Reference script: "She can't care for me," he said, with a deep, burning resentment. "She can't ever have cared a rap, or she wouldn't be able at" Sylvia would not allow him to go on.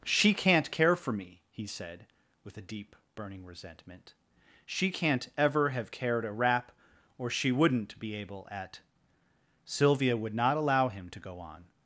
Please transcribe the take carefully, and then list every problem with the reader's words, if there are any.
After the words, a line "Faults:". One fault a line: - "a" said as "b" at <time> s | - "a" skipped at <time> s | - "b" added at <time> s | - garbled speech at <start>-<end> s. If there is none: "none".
"She can't care for me," he said, with a deep, burning resentment. "She can't ever have cared a rap, or she wouldn't be able at" Sylvia would not allow him to go on.
Faults:
none